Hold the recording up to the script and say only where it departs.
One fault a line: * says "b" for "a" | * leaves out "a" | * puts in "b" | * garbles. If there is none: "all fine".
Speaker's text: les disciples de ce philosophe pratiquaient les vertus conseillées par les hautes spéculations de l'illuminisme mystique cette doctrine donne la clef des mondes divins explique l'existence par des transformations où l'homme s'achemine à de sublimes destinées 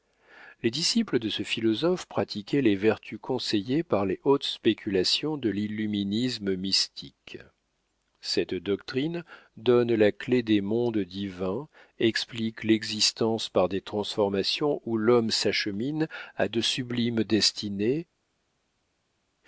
all fine